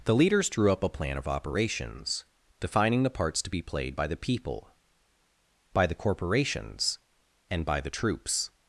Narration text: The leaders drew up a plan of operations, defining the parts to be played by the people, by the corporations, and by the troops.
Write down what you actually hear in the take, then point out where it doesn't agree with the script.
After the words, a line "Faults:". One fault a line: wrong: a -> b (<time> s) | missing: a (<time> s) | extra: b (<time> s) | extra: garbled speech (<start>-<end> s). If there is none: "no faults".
The leaders drew up a plan of operations, defining the parts to be played by the people, by the corporations, and by the troops.
Faults:
no faults